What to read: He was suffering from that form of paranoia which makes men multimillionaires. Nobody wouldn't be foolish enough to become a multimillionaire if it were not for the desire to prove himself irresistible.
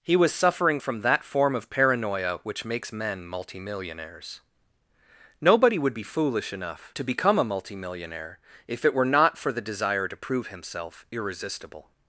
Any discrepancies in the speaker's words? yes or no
yes